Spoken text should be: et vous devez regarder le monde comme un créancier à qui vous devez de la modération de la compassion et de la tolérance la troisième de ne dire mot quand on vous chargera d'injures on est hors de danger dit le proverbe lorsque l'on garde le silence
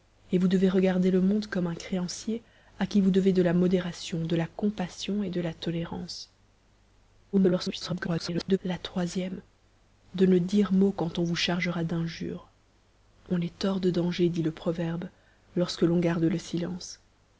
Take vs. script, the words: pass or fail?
fail